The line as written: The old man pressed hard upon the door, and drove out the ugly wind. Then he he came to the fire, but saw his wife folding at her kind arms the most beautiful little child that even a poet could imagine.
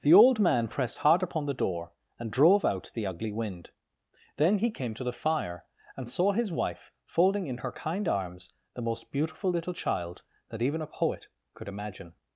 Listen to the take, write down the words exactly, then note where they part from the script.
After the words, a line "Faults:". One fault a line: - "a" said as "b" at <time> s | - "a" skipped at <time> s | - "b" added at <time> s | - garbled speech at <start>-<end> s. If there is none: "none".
The old man pressed hard upon the door, and drove out the ugly wind. Then he came to the fire, and saw his wife folding in her kind arms the most beautiful little child that even a poet could imagine.
Faults:
- "he" skipped at 4.7 s
- "but" said as "and" at 6.0 s
- "at" said as "in" at 7.5 s